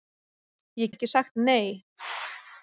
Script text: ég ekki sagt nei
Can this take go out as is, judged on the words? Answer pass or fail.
pass